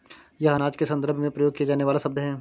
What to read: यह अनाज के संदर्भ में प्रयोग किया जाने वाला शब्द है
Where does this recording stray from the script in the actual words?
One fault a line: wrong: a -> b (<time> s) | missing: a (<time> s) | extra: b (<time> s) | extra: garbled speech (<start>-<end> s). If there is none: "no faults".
no faults